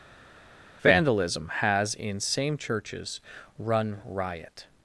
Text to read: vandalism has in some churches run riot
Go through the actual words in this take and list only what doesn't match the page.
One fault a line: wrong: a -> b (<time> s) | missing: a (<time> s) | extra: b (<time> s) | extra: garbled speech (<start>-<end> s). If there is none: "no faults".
wrong: some -> same (2.2 s)